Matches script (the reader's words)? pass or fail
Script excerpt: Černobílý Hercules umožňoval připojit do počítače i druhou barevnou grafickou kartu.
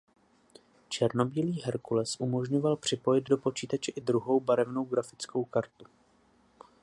pass